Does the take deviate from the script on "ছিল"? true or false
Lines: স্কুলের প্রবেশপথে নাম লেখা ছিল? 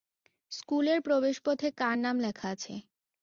true